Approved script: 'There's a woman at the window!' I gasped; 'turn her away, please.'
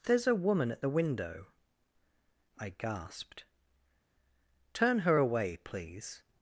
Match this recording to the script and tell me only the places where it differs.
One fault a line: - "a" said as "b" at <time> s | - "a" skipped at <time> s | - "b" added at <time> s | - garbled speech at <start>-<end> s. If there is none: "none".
none